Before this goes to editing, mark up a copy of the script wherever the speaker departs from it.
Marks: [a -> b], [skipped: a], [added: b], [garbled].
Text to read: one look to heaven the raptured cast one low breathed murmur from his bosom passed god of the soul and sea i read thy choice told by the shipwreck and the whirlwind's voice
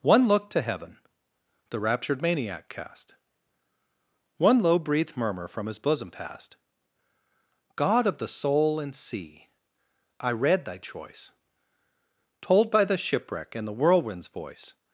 one look to heaven the raptured [added: maniac] cast one low breathed murmur from his bosom passed god of the soul and sea i read thy choice told by the shipwreck and the whirlwind's voice